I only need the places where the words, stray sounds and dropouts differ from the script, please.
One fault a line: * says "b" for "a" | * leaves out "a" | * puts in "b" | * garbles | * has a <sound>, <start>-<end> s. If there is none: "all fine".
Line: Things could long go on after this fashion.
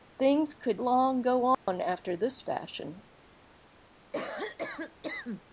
* has a dropout, 1.5-1.7 s
* has a cough, 4.1-5.4 s